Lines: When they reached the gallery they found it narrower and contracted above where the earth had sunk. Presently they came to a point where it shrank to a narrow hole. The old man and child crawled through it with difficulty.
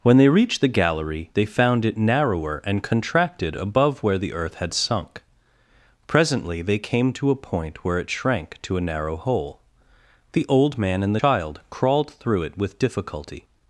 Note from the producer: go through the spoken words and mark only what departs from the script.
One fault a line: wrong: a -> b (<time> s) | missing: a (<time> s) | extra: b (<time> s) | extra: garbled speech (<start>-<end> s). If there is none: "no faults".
no faults